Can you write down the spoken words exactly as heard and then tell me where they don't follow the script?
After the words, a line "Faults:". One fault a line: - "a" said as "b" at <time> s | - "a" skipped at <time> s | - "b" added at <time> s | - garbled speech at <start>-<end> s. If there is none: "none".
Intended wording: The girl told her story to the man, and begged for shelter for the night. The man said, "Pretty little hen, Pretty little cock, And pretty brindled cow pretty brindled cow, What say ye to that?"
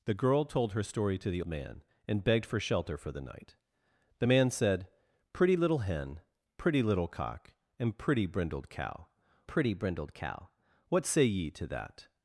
The girl told her story to the man, and begged for shelter for the night. The man said, "Pretty little hen, Pretty little cock, And pretty brindled cow pretty brindled cow, What say ye to that?"
Faults:
none